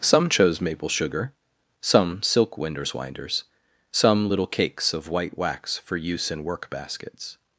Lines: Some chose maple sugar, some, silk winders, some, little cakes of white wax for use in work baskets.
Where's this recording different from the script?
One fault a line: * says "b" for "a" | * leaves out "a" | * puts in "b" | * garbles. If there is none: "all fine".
* puts in "winders"